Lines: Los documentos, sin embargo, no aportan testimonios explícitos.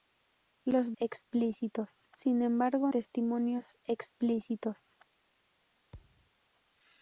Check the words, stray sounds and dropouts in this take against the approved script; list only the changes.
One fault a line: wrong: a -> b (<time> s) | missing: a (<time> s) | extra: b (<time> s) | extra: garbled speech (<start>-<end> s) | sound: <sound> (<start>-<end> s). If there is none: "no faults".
wrong: documentos -> explícitos (0.9 s)
missing: no aportan (2.9 s)
sound: thud (5.9-6.3 s)